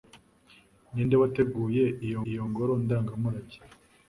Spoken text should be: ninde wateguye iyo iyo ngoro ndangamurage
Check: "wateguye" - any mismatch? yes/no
no